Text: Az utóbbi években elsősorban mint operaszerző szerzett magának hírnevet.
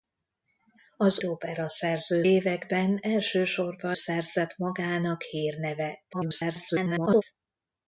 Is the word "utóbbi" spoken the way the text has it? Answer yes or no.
no